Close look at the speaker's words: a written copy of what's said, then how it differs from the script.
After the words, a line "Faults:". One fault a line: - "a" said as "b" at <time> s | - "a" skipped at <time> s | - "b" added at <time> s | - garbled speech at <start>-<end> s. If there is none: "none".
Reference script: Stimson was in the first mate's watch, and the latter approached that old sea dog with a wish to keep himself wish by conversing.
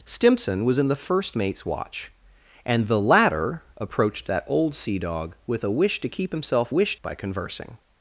Stimson was in the first mate's watch, and the latter approached that old sea dog with a wish to keep himself wish by conversing.
Faults:
none